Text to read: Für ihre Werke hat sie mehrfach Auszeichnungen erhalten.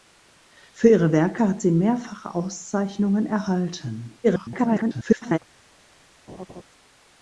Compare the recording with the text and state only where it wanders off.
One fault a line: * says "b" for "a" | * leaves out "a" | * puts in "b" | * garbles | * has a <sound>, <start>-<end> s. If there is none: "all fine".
* garbles
* has a laugh, 6.3-6.6 s